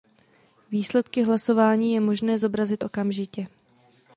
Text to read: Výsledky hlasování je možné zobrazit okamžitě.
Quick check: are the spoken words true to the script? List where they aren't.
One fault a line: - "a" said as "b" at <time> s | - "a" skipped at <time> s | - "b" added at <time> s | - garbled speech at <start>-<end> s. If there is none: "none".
none